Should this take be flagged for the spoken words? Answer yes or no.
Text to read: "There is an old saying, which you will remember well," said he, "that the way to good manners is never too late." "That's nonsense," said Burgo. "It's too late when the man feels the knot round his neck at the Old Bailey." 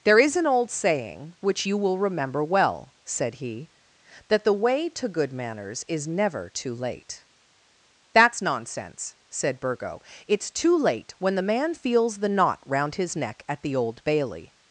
no